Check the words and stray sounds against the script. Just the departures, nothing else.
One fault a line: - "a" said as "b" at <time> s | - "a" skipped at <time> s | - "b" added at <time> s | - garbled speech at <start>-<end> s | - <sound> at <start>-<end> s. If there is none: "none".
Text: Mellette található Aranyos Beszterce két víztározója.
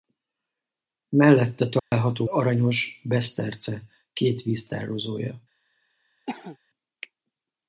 - dropout at 1.8-1.9 s
- cough at 6.3-6.6 s